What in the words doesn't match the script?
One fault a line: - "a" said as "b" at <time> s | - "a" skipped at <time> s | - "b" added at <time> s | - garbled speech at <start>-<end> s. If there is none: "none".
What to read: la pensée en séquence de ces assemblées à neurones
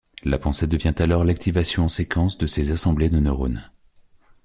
- "devient alors l'activation" added at 0.7 s
- "à" said as "de" at 3.1 s